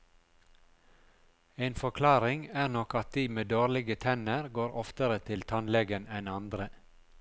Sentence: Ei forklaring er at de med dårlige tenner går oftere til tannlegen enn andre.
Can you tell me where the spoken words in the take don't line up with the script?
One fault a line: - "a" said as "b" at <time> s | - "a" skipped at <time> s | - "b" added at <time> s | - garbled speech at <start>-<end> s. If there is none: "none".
- "Ei" said as "En" at 1.6 s
- "nok" added at 2.8 s